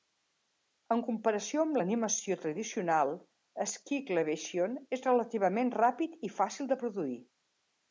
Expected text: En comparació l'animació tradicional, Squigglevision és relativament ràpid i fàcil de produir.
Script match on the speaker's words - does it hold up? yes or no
no